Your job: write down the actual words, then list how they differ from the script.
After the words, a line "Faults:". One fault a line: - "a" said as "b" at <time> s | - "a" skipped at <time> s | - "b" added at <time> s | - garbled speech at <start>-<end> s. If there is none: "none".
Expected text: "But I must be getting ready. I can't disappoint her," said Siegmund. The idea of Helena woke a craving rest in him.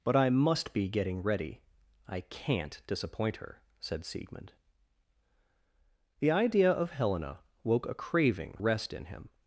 "But I must be getting ready. I can't disappoint her," said Siegmund. The idea of Helena woke a craving rest in him.
Faults:
none